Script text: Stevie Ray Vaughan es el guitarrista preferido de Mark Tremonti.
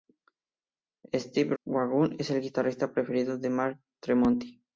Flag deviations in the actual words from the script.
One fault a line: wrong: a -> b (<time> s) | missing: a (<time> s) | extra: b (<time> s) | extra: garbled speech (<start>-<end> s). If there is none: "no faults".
missing: Ray (1.6 s)